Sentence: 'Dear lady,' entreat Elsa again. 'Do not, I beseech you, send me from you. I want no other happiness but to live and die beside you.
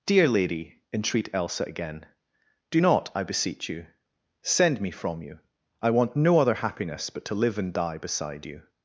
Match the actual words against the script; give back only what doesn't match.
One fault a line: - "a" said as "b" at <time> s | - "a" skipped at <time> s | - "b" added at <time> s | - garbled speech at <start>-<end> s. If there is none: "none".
none